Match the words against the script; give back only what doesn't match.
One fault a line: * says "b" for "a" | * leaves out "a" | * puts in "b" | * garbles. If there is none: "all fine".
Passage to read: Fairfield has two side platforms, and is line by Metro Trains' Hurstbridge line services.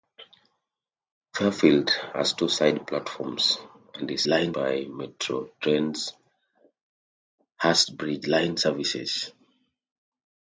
all fine